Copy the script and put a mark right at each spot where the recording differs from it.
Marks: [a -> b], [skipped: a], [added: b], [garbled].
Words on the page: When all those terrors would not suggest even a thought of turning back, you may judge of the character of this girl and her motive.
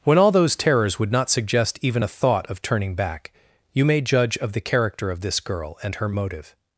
When all those terrors would not suggest even a thought of turning back, you may judge of the character of this girl and her motive.